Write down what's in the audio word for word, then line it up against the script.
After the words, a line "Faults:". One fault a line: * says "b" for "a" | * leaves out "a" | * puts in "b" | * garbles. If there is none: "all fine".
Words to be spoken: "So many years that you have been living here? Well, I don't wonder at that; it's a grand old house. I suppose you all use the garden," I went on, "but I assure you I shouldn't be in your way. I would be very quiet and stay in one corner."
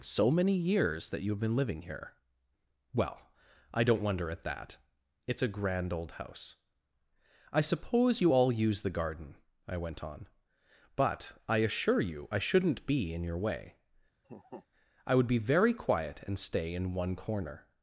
"So many years that you have been living here? Well, I don't wonder at that; it's a grand old house. I suppose you all use the garden," I went on, "but I assure you I shouldn't be in your way. I would be very quiet and stay in one corner."
Faults:
all fine